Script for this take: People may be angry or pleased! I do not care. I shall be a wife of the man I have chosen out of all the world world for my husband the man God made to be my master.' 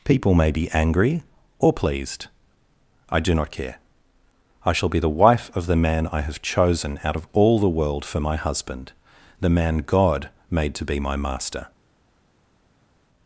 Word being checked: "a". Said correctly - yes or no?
no